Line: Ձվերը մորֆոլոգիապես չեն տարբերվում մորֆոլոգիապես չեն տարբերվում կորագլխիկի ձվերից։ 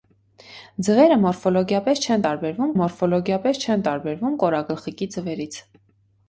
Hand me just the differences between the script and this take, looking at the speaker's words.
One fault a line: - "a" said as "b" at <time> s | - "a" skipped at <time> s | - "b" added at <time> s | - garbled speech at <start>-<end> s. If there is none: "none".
none